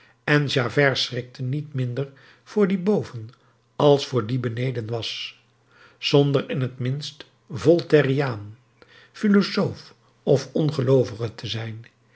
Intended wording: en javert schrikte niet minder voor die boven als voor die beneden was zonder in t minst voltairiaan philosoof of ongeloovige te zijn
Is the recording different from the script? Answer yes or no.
no